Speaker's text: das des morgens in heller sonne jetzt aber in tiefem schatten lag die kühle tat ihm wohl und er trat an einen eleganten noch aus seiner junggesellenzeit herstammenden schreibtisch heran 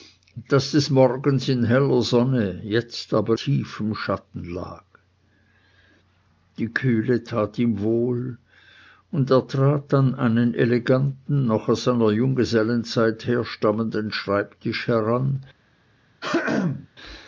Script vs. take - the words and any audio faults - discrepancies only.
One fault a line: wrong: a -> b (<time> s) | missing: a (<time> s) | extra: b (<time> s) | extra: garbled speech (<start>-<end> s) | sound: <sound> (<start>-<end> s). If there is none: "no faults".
missing: in (3.4 s)
sound: throat clearing (16.2-16.9 s)